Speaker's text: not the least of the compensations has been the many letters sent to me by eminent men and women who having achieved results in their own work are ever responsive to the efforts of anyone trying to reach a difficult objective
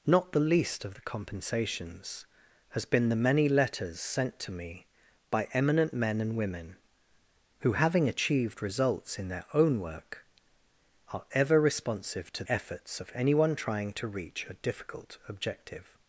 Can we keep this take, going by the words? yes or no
no